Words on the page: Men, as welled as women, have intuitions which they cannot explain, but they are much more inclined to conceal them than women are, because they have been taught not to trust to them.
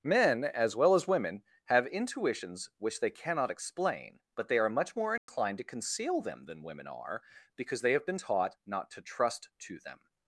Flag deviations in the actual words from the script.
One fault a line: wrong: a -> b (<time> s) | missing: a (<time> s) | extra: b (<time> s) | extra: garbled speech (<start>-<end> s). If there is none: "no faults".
wrong: welled -> well (0.8 s)